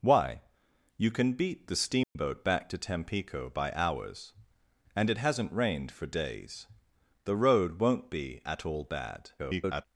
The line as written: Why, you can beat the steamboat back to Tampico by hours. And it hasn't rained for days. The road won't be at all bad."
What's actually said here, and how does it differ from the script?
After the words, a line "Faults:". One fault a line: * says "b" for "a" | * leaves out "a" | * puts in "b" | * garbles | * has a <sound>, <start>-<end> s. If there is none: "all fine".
Why, you can beat the steamboat back to Tampico by hours. And it hasn't rained for days. The road won't be at all bad." [garbled]
Faults:
* has a dropout, 2.0-2.2 s
* garbles